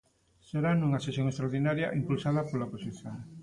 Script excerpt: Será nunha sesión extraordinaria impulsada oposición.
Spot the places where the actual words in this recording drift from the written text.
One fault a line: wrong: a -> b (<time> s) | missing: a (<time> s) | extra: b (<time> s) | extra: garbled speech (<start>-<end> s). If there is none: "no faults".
extra: pola (2.5 s)